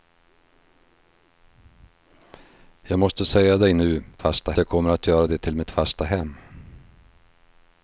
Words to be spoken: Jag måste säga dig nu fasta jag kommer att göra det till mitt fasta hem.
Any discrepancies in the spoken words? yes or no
no